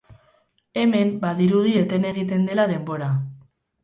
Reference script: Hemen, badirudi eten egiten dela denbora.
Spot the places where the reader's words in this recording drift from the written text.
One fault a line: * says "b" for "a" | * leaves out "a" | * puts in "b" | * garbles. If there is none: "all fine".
all fine